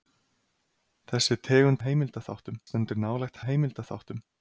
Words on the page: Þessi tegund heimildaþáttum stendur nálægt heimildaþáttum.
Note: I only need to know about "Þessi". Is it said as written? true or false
true